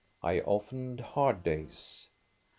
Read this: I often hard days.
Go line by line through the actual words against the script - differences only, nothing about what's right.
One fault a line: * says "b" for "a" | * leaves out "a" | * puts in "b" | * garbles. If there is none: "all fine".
all fine